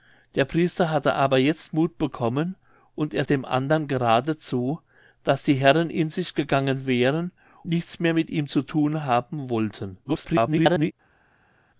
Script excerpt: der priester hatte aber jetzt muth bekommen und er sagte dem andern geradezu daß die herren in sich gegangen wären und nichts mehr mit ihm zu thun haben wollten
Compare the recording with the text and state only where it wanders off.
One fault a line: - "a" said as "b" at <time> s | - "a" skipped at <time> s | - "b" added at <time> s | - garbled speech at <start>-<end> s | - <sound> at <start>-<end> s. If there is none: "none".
- "sagte" skipped at 3.2 s
- "und" skipped at 7.3 s
- garbled speech at 10.0-10.9 s